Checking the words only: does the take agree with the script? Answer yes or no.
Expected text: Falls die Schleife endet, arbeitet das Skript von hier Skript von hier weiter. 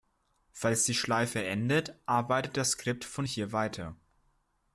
no